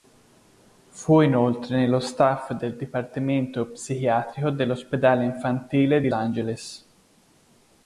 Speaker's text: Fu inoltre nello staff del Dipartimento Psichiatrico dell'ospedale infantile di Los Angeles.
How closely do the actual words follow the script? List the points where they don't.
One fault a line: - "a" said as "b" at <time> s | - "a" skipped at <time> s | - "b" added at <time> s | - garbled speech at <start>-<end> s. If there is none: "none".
- "Los" skipped at 6.1 s